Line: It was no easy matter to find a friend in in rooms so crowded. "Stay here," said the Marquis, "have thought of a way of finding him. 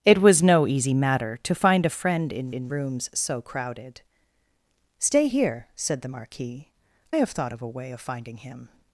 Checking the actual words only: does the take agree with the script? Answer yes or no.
yes